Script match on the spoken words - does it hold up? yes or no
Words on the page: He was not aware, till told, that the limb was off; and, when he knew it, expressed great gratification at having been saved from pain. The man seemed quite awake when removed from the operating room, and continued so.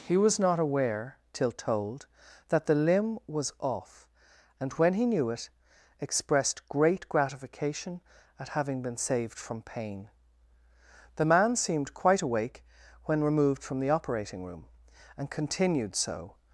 yes